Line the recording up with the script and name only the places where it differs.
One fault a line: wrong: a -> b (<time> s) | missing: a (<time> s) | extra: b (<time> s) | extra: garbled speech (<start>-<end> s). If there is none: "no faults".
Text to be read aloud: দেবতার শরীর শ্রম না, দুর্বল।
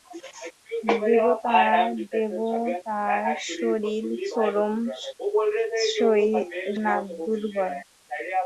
no faults